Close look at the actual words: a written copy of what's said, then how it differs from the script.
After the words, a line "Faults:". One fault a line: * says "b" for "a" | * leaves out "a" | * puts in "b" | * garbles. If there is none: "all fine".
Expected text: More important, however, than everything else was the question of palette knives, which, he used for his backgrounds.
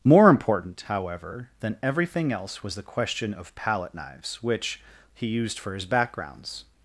More important, however, than everything else was the question of palette knives, which, he used for his backgrounds.
Faults:
all fine